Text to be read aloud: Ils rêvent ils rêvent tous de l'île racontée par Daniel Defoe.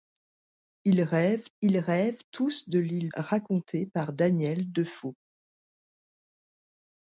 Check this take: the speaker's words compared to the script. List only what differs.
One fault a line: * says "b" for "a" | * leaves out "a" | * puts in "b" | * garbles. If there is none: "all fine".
all fine